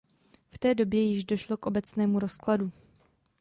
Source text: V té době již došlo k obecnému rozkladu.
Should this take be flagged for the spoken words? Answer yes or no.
no